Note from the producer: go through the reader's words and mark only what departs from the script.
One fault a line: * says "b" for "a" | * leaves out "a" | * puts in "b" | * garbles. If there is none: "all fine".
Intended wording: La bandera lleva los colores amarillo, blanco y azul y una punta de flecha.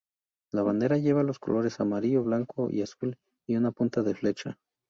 all fine